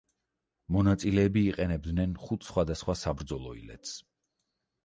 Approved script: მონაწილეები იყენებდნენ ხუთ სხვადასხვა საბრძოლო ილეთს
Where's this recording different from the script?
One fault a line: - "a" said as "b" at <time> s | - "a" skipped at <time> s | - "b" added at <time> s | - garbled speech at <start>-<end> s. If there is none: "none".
none